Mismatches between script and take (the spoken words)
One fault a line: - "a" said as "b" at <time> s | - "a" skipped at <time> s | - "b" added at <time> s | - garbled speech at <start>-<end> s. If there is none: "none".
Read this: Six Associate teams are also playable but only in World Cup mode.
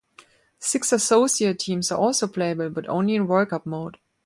none